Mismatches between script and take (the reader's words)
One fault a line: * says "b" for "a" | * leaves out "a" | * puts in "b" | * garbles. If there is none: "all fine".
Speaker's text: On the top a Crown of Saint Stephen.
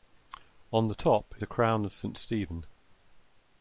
all fine